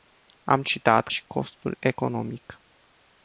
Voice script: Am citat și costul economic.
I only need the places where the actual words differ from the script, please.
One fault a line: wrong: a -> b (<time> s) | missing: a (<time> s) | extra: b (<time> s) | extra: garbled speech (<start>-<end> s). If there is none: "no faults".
no faults